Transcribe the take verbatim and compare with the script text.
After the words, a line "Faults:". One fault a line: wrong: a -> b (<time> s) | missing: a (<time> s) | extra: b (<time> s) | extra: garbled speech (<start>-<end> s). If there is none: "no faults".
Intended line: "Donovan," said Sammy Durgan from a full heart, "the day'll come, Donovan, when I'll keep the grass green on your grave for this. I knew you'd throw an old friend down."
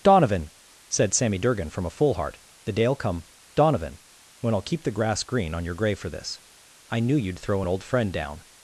"Donovan," said Sammy Durgan from a full heart, "the day'll come, Donovan, when I'll keep the grass green on your grave for this. I knew you'd throw an old friend down."
Faults:
no faults